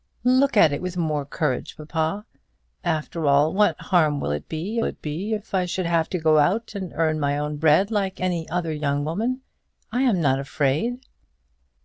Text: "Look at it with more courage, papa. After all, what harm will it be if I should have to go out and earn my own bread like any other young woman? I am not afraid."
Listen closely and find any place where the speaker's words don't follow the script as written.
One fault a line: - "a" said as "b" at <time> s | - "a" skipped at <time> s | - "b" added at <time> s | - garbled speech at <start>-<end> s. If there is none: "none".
- "it be" added at 4.8 s